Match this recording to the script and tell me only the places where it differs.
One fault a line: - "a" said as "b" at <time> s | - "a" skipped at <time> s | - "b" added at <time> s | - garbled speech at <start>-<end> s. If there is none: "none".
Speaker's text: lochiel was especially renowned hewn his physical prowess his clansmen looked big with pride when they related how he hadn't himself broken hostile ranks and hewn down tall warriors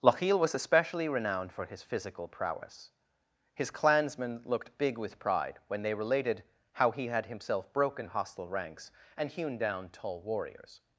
- "hewn" said as "for" at 1.5 s
- "hadn't" said as "had" at 7.1 s